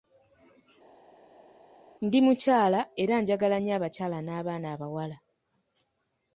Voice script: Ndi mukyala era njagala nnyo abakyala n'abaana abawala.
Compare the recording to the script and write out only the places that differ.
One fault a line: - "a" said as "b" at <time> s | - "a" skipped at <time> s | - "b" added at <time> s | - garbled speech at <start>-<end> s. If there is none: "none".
none